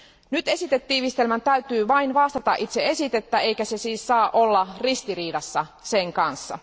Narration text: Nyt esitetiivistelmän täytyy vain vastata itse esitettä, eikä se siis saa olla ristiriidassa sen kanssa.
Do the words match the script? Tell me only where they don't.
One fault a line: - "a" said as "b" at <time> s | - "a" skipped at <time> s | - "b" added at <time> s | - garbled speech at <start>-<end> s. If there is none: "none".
none